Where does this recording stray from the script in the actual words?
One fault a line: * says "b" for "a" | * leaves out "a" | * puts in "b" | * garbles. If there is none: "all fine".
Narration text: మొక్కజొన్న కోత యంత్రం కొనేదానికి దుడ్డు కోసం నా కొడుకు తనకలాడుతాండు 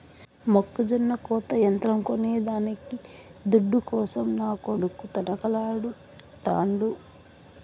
all fine